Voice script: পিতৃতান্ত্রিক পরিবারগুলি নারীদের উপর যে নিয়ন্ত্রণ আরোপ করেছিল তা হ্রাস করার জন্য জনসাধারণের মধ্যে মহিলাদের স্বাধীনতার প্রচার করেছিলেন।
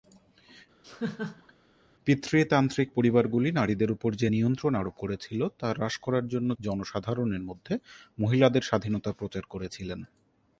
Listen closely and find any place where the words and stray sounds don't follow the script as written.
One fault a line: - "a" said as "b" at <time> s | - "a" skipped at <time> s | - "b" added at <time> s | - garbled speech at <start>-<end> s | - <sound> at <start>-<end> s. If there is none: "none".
- laugh at 0.8-1.5 s